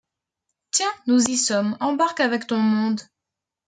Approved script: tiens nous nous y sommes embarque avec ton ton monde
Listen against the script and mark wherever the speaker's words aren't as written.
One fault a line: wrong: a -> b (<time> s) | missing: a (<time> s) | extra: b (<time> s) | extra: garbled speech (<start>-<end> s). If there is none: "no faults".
missing: nous (1.2 s)
missing: ton (2.6 s)